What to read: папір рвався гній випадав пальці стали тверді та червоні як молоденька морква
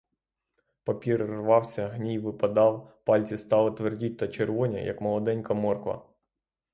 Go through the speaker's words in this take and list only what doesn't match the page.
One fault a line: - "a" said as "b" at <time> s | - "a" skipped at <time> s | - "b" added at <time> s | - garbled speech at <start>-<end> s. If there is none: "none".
none